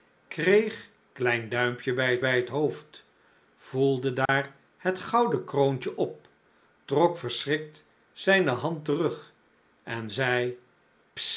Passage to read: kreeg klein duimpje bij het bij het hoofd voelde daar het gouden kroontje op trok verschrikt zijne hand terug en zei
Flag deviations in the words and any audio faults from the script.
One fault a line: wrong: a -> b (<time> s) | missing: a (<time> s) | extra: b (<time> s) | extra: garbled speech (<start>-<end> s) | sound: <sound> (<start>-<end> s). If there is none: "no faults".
sound: dropout (4.3-4.3 s)